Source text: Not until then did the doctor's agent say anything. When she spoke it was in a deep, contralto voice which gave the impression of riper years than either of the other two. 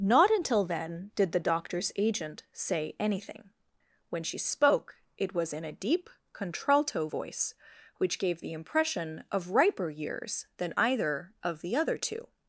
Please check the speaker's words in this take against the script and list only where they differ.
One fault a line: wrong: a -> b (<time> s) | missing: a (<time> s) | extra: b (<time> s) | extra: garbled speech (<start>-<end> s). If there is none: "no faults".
no faults